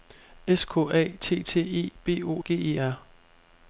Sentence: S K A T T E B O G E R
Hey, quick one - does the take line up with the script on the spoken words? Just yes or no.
yes